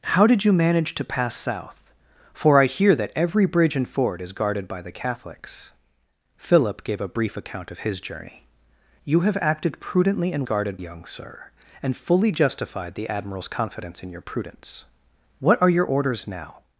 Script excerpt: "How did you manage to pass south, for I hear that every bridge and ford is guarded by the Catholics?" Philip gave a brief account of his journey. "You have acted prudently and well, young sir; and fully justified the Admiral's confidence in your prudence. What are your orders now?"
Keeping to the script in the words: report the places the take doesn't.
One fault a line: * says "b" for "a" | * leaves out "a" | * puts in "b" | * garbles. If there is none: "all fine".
* says "guarded" for "well"